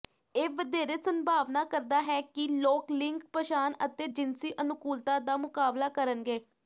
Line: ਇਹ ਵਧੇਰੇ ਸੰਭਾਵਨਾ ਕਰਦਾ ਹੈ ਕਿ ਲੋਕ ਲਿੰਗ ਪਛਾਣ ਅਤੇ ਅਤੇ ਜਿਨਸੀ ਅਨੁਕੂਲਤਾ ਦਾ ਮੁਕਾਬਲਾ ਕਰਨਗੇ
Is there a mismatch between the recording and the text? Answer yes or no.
yes